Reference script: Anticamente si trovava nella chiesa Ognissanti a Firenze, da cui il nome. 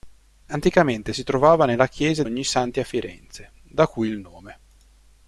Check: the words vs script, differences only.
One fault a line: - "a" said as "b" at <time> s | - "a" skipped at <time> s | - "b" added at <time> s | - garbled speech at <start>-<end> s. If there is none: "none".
none